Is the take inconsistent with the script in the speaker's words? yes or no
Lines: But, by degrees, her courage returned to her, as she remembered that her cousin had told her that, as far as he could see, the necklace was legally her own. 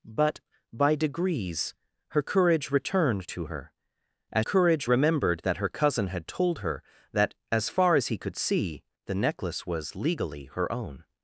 yes